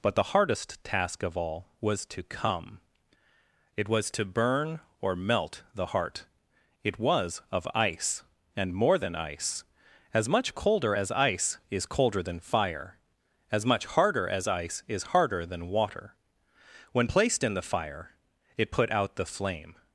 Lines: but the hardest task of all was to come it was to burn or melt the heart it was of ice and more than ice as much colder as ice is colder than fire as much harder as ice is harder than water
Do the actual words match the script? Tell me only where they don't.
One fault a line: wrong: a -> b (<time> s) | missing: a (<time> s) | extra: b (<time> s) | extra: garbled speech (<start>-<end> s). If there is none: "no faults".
extra: when placed in the fire it put out the flame (16.9 s)